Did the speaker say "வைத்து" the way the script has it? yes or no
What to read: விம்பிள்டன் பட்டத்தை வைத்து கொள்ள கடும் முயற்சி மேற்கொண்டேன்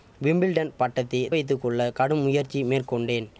yes